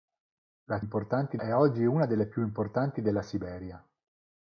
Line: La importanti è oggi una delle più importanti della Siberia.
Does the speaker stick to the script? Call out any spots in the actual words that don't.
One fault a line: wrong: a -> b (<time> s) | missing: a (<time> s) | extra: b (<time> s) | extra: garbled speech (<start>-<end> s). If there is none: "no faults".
no faults